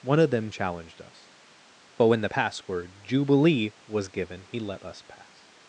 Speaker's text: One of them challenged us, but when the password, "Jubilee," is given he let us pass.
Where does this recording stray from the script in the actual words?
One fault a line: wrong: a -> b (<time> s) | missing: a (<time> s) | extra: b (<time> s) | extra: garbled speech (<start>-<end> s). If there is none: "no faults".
wrong: is -> was (3.9 s)